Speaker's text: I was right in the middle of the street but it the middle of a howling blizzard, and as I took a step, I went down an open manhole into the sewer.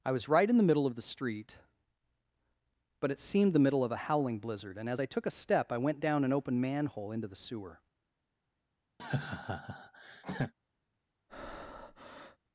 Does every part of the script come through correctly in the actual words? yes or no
no